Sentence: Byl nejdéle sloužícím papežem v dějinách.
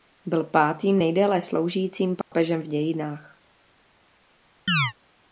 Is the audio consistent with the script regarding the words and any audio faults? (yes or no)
no